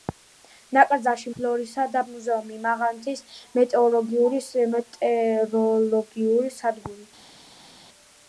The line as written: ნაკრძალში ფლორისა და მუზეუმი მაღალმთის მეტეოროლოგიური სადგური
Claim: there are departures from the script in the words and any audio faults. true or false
false